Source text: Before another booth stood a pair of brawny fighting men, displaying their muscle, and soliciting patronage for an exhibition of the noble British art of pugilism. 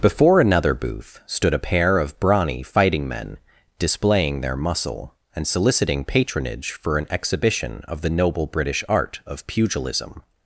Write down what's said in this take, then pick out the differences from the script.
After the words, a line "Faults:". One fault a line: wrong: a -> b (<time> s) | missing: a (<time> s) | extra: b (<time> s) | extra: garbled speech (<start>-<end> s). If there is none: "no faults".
Before another booth stood a pair of brawny fighting men, displaying their muscle, and soliciting patronage for an exhibition of the noble British art of pugilism.
Faults:
no faults